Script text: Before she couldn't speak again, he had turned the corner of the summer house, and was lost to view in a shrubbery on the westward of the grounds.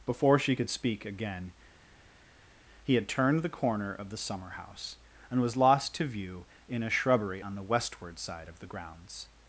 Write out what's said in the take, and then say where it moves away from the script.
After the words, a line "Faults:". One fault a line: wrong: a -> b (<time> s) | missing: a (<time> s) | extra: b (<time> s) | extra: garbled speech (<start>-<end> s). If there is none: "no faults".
Before she could speak again, he had turned the corner of the summer house, and was lost to view in a shrubbery on the westward side of the grounds.
Faults:
wrong: couldn't -> could (0.5 s)
extra: side (8.2 s)